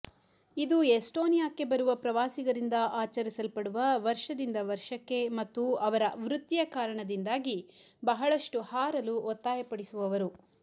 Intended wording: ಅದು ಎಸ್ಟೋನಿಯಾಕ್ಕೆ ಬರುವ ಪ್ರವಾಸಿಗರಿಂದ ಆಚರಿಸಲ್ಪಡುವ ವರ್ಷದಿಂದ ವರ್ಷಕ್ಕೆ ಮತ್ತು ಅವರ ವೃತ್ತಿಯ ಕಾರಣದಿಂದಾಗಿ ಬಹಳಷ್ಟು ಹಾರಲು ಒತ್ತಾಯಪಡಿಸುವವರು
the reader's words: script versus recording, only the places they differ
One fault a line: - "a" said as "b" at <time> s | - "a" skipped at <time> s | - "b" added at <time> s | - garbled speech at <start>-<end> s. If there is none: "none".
- "ಅದು" said as "ಇದು" at 0.6 s